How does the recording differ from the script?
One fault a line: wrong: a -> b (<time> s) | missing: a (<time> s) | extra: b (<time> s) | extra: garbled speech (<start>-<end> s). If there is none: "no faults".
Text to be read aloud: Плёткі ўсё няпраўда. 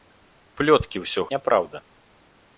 no faults